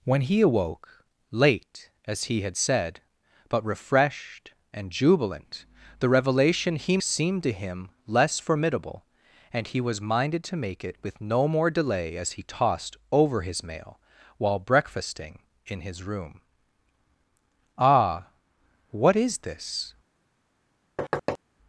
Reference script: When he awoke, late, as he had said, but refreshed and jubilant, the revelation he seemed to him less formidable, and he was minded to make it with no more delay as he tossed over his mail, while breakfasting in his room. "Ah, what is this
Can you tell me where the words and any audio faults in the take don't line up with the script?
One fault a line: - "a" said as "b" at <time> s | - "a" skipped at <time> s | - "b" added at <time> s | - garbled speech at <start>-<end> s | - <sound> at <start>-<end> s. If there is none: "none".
- thud at 21.0-21.4 s